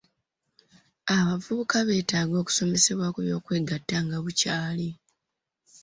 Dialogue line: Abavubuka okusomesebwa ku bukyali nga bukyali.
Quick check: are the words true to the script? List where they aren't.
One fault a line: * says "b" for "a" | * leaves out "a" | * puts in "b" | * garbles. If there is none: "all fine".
* puts in "beetaaga"
* says "by'okwegatta" for "bukyali"